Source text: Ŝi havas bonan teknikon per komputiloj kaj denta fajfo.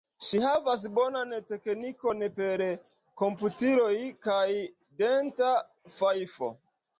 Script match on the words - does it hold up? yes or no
yes